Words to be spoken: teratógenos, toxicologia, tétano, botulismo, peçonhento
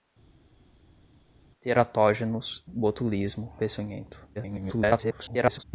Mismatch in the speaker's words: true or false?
true